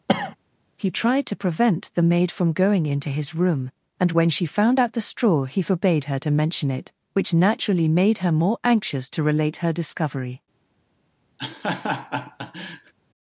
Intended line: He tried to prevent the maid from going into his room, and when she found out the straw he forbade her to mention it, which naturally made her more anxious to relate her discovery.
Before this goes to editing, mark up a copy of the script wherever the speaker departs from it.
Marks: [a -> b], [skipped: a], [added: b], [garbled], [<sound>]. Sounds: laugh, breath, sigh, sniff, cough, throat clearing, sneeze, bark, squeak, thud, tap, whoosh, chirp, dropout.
[cough] He tried to prevent the maid from going into his room, and when she found out the straw he forbade her to mention it, which naturally made her more anxious to relate her discovery. [laugh]